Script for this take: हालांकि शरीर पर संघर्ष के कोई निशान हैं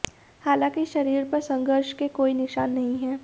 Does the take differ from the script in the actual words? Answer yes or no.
yes